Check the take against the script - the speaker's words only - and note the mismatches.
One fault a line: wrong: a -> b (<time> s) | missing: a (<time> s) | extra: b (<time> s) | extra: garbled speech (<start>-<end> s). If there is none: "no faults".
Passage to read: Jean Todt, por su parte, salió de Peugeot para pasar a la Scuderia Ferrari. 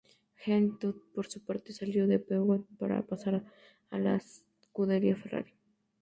no faults